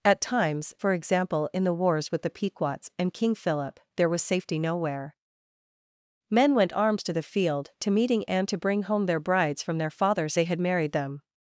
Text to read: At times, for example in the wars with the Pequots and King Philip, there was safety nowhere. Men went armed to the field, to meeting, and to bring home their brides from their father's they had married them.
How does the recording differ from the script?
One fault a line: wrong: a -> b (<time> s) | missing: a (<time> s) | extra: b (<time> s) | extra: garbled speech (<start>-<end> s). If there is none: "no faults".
no faults